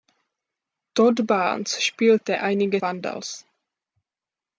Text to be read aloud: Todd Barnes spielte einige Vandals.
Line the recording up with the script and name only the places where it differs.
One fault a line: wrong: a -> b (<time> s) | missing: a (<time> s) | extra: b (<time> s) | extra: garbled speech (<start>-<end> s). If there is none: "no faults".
no faults